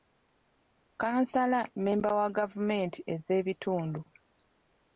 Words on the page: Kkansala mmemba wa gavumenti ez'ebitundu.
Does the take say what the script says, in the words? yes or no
yes